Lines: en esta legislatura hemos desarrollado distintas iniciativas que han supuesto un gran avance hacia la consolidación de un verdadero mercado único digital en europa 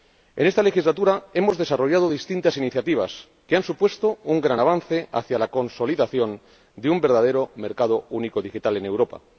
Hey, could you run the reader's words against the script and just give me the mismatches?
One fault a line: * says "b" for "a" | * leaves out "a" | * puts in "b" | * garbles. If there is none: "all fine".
all fine